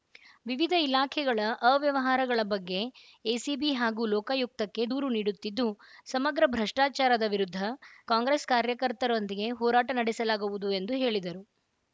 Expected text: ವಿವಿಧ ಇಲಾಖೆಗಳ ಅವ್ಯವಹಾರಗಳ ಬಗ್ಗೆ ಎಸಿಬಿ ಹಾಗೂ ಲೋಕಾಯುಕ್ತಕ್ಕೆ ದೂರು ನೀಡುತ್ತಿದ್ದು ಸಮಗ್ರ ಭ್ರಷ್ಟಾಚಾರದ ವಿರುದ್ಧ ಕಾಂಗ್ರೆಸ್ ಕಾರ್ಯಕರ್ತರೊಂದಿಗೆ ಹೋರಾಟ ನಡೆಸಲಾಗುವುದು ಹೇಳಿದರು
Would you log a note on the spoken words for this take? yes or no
yes